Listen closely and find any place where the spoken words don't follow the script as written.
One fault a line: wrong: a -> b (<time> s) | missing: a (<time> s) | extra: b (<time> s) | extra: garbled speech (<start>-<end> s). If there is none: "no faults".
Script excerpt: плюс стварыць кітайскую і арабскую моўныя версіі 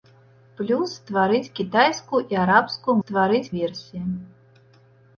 wrong: моўныя -> стварыць (3.0 s)